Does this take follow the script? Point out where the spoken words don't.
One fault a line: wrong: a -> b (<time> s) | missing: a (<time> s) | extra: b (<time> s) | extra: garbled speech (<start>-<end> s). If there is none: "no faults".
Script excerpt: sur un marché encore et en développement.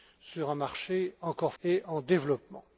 no faults